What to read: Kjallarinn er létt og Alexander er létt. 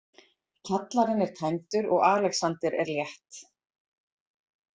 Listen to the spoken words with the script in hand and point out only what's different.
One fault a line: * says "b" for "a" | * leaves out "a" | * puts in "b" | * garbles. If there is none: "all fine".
* says "tæmdur" for "létt"